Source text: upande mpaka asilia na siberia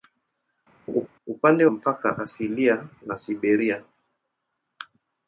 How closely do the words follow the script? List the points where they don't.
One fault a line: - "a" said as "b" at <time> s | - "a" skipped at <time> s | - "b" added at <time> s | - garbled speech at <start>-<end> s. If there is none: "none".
none